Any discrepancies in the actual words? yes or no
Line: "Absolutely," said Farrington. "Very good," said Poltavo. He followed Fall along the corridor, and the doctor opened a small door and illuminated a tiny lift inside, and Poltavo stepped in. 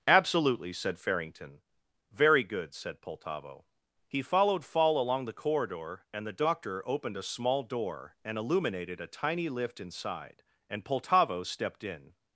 no